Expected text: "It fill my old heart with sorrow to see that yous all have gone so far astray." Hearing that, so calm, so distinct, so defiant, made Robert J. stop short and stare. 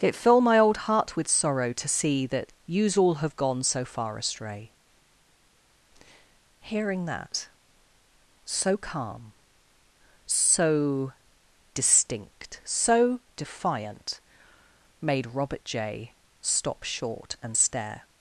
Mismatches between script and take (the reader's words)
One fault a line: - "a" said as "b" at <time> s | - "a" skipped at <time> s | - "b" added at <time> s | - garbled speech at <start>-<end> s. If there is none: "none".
none